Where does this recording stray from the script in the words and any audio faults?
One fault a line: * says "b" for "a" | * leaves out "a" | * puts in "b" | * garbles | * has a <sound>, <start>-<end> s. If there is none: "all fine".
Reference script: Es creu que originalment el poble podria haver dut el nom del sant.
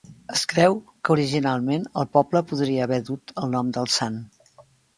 all fine